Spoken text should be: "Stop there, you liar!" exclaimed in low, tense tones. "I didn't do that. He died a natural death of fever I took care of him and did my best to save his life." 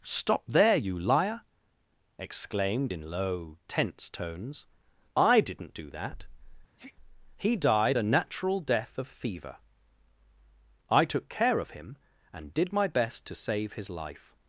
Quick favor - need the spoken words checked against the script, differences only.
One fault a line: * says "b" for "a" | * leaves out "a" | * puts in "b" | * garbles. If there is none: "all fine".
all fine